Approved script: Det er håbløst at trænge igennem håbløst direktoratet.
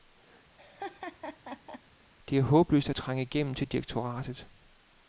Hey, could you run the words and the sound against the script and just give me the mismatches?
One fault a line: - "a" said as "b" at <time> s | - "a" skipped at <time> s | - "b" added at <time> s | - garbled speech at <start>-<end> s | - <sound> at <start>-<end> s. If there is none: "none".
- laugh at 0.6-1.8 s
- "håbløst" said as "til" at 3.5 s